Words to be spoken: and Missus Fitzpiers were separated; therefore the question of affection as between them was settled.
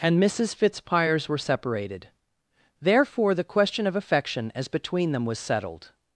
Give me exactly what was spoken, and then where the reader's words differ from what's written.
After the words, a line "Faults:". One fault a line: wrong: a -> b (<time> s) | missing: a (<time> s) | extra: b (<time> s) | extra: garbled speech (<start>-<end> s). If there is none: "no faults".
and Missus Fitzpiers were separated; therefore the question of affection as between them was settled.
Faults:
no faults